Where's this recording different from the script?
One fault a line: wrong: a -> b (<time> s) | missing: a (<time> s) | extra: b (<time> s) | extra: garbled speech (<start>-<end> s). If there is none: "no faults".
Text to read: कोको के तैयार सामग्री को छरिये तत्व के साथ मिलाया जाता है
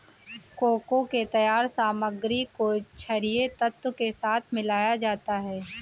no faults